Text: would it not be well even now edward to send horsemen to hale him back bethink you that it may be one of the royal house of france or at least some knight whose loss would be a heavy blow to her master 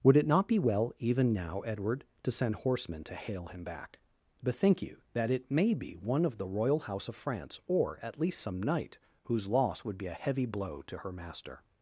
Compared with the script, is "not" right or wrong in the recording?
right